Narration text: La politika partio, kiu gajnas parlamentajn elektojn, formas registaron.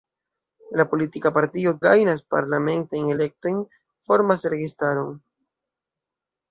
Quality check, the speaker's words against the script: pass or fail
fail